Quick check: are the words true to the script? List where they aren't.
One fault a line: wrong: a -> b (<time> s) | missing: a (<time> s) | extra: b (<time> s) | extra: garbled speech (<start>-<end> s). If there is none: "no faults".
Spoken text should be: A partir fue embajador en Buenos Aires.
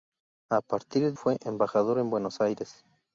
no faults